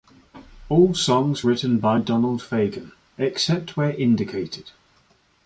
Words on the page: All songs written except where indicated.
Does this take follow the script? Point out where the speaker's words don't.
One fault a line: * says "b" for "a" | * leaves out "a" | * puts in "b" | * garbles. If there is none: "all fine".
* puts in "by Donald Fagen"